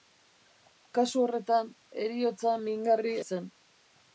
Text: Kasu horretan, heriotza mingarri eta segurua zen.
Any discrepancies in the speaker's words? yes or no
yes